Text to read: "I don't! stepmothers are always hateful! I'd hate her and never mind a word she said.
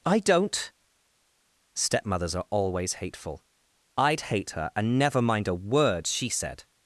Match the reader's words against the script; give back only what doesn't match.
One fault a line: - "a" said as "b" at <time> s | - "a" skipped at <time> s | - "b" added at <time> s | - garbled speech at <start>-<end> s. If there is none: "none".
none